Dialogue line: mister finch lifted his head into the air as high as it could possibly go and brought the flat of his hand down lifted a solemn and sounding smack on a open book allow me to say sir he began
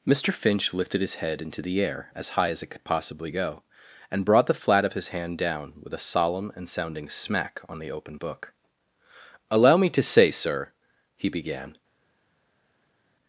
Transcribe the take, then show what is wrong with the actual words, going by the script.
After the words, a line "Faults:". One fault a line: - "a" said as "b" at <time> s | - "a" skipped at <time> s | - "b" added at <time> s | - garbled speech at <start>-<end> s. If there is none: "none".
mister finch lifted his head into the air as high as it could possibly go and brought the flat of his hand down with a solemn and sounding smack on the open book allow me to say sir he began
Faults:
- "lifted" said as "with" at 5.8 s
- "a" said as "the" at 7.8 s